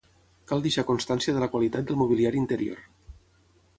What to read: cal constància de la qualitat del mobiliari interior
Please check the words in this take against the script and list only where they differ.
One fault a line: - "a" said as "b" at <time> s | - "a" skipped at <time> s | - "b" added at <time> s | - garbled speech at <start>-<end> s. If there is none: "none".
- "deixar" added at 0.7 s